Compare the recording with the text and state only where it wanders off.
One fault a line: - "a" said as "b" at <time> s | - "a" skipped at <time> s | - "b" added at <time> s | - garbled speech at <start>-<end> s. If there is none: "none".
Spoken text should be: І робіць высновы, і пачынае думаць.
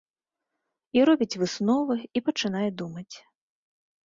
none